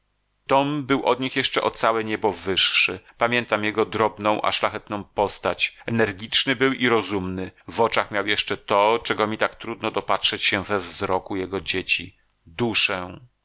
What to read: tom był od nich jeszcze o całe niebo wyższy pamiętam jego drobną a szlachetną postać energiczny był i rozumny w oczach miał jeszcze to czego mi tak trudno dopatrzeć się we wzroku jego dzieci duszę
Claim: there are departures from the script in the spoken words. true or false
false